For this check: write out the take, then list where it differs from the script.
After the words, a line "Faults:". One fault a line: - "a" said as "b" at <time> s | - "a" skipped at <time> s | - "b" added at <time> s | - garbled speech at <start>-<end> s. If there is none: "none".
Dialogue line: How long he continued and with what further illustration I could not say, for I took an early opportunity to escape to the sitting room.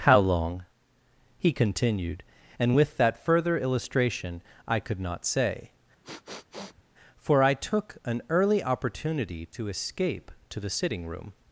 How long he continued and with that further illustration I could not say, for I took an early opportunity to escape to the sitting room.
Faults:
- "what" said as "that" at 3.0 s